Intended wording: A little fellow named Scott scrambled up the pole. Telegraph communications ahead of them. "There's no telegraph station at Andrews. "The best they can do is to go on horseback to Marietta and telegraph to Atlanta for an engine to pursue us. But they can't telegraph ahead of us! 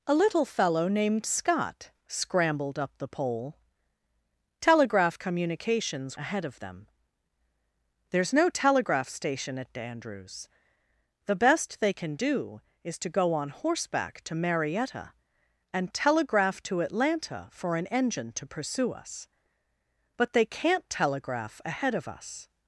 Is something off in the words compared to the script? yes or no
no